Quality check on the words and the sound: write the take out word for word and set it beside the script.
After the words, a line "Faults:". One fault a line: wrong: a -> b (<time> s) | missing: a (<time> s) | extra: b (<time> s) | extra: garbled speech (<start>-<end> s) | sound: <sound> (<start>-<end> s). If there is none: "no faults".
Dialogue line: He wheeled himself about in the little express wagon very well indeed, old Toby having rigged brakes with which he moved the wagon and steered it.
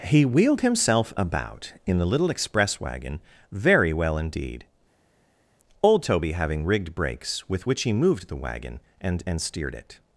He wheeled himself about in the little express wagon very well indeed, old Toby having rigged brakes with which he moved the wagon and and steered it.
Faults:
extra: and (9.3 s)